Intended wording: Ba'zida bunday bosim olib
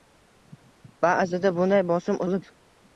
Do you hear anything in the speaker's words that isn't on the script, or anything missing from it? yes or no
no